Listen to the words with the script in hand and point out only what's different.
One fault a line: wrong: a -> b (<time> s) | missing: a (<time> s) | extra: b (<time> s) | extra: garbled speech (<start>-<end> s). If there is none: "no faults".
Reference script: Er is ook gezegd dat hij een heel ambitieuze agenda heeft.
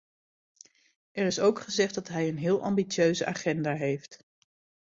no faults